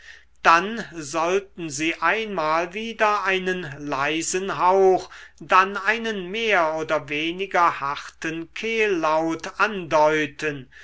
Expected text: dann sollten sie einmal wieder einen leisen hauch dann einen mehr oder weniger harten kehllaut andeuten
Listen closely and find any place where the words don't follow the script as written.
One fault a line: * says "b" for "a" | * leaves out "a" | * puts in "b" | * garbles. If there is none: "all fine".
all fine